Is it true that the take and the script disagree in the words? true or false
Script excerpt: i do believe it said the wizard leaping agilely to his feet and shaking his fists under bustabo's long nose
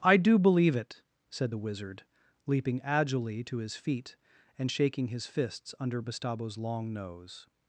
false